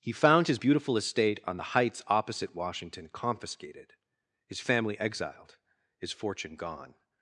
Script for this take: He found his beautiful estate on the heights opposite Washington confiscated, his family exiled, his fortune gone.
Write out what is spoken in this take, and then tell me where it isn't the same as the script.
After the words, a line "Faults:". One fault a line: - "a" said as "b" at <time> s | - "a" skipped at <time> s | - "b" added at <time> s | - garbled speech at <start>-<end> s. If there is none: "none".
He found his beautiful estate on the heights opposite Washington confiscated, his family exiled, his fortune gone.
Faults:
none